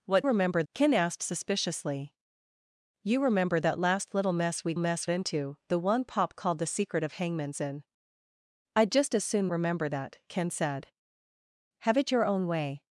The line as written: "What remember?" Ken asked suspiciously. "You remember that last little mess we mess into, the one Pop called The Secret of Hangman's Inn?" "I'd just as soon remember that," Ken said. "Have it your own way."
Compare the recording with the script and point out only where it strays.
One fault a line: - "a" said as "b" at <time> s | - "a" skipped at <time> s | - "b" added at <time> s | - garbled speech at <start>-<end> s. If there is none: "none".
none